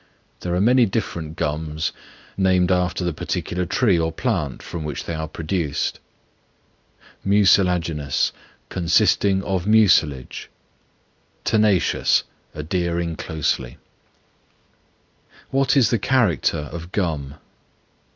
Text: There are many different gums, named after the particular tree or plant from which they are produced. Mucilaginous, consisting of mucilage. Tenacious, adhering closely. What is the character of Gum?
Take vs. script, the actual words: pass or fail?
pass